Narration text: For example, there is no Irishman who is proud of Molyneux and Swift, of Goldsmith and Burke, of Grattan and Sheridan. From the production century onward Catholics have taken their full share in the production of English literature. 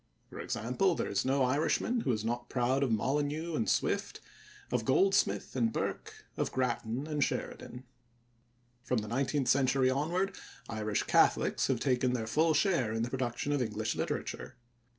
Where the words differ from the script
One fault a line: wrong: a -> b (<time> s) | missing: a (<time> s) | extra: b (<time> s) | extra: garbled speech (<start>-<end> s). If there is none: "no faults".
extra: not (2.2 s)
wrong: production -> nineteenth (9.1 s)
extra: Irish (10.7 s)